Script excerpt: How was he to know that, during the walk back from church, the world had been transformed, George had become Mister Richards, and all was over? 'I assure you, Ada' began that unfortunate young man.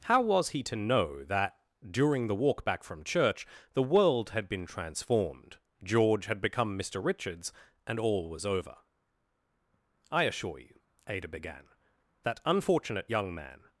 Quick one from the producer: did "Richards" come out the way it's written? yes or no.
yes